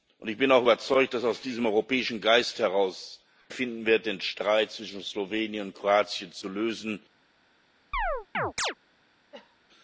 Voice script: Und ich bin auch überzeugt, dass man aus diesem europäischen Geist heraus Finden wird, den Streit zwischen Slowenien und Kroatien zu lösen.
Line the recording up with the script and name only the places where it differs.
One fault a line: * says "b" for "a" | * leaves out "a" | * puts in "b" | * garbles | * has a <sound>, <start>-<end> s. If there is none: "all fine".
* has a chirp, 7.9-8.7 s
* has a cough, 9.3-9.6 s